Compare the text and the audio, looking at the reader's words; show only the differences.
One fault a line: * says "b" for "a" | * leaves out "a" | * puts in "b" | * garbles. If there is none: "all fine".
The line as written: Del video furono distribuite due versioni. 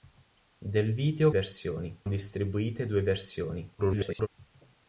* says "versioni" for "furono"
* garbles